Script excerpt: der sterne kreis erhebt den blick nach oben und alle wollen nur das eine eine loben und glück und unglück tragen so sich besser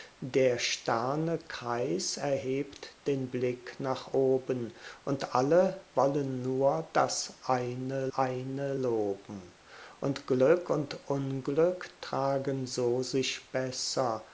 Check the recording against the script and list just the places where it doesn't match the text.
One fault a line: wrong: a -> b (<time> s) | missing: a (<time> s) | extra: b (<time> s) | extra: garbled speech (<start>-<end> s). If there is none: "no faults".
no faults